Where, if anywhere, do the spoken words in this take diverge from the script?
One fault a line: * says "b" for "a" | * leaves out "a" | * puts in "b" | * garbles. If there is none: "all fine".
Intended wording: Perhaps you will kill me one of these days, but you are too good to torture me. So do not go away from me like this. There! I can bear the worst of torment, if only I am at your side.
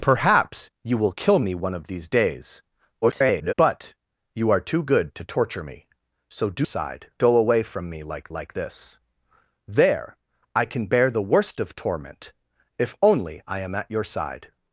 * garbles
* says "side" for "not"
* puts in "like"